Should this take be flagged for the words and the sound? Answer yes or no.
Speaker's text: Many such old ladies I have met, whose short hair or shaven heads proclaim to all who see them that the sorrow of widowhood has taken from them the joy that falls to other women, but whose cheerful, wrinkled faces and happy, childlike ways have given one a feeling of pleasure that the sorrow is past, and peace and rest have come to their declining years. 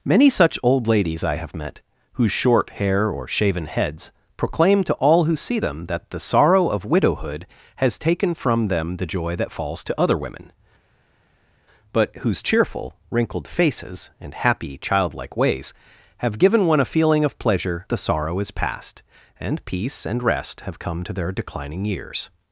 yes